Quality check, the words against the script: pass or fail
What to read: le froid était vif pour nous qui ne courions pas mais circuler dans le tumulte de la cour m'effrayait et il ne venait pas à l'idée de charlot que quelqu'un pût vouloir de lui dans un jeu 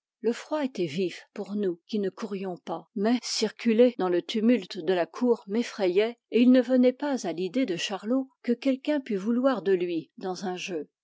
pass